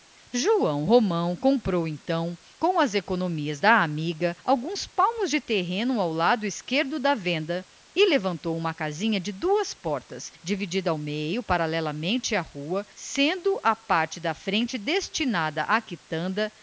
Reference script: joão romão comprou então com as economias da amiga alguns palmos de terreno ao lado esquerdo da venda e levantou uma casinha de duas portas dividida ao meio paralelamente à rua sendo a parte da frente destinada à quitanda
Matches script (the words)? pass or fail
pass